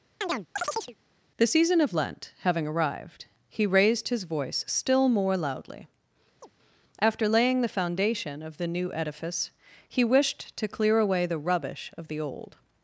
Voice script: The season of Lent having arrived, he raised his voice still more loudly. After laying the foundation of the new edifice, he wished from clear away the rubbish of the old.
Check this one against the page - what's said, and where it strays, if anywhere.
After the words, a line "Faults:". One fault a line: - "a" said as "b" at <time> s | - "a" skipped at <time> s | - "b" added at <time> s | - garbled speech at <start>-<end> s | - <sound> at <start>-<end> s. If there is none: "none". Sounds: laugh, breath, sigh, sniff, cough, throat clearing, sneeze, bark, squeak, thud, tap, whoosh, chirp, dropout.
The season of Lent having arrived, he raised his voice still more loudly. After laying the foundation of the new edifice, he wished to clear away the rubbish of the old.
Faults:
- chirp at 0.2-1.0 s
- chirp at 6.4-6.5 s
- "from" said as "to" at 10.6 s